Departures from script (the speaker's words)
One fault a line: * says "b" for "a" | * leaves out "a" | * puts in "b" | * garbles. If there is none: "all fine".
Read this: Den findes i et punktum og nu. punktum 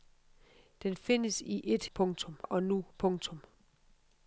all fine